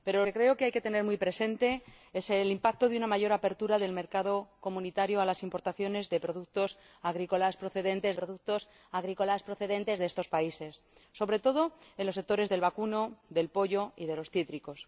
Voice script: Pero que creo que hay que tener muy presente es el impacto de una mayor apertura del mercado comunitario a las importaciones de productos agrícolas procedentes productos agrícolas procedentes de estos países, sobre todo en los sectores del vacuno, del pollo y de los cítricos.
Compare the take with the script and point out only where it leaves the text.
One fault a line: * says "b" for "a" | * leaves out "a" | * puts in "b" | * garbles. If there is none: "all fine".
all fine